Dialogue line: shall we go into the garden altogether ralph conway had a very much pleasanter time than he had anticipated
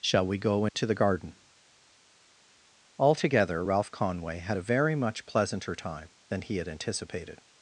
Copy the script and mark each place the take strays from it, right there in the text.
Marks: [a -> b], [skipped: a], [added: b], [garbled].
shall we go into the garden altogether ralph conway had a very much pleasanter time than he had anticipated